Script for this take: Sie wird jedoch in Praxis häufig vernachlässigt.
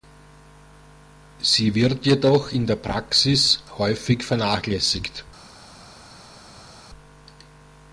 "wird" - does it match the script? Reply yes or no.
yes